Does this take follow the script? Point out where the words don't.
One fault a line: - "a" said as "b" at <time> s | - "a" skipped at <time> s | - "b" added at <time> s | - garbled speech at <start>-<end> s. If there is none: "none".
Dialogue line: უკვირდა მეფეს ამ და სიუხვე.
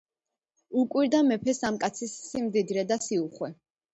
- "კაცის სიმდიდრე" added at 1.8 s